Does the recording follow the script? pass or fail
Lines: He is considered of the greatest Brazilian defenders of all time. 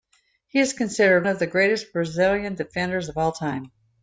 pass